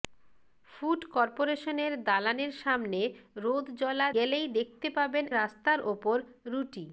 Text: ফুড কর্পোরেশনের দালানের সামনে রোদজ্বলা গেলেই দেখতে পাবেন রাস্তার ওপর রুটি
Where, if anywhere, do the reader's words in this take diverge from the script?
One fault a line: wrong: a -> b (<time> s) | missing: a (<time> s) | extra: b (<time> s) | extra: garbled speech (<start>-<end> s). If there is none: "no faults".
no faults